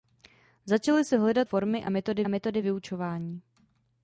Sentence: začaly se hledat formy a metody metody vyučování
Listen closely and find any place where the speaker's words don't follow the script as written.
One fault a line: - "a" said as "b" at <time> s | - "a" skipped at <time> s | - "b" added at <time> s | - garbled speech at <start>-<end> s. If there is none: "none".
none